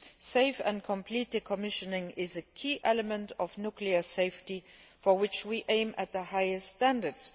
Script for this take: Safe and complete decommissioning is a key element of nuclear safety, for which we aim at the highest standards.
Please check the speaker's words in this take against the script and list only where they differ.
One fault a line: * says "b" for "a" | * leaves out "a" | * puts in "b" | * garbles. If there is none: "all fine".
all fine